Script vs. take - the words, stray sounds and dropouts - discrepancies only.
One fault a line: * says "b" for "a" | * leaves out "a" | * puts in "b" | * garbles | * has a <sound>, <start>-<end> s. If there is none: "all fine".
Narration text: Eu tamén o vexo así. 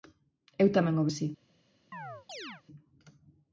* leaves out "vexo"
* has a chirp, 1.9-2.6 s